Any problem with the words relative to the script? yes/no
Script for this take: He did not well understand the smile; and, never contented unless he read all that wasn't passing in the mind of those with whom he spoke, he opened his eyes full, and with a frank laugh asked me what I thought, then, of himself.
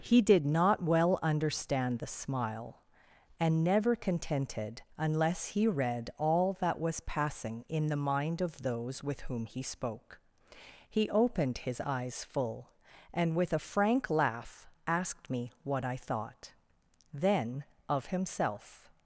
yes